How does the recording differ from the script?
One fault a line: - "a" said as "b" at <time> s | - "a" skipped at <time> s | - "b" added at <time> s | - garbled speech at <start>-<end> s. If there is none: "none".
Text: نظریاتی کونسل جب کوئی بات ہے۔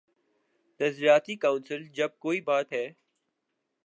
none